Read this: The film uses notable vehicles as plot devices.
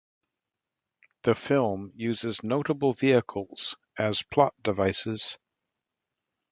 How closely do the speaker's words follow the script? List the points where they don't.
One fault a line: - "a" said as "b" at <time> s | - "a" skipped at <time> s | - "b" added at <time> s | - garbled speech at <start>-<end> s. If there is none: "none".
none